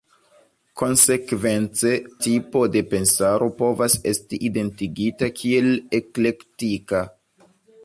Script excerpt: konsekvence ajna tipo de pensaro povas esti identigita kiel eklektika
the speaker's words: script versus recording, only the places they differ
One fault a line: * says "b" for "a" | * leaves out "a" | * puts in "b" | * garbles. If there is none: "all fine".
* leaves out "ajna"